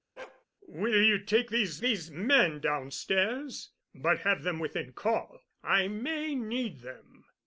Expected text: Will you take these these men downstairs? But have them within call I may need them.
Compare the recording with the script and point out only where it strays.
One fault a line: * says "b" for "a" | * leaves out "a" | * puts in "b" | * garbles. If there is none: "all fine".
all fine